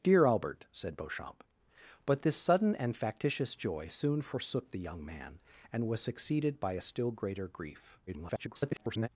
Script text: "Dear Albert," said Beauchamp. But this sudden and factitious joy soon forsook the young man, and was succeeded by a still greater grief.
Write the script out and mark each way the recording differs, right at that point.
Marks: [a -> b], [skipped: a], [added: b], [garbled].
"Dear Albert," said Beauchamp. But this sudden and factitious joy soon forsook the young man, and was succeeded by a still greater grief. [garbled]